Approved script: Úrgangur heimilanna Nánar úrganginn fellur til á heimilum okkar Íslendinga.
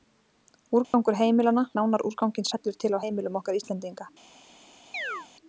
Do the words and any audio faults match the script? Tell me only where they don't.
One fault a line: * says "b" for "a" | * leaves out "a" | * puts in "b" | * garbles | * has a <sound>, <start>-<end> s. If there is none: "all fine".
* has a dropout, 0.8-0.9 s
* has a chirp, 4.9-5.3 s